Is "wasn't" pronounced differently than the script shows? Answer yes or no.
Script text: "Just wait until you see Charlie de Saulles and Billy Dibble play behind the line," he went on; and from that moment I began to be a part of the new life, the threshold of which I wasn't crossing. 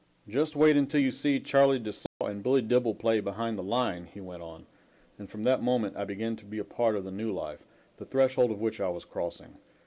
yes